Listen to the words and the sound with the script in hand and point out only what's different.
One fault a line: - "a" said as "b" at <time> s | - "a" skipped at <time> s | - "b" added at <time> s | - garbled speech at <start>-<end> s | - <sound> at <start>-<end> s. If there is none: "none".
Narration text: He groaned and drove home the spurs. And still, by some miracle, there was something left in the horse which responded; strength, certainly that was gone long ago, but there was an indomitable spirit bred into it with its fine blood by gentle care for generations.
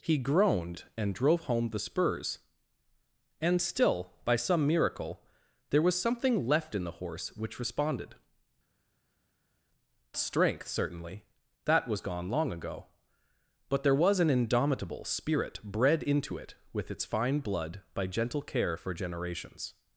none